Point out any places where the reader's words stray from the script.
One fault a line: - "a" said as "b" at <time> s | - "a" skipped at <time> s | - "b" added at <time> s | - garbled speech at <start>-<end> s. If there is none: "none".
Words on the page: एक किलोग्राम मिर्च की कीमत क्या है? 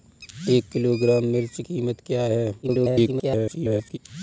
- "की" skipped at 1.6 s
- garbled speech at 2.6-4.0 s